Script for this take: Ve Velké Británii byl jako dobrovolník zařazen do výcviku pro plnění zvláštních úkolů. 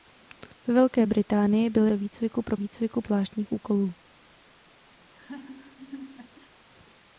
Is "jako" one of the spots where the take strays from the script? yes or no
yes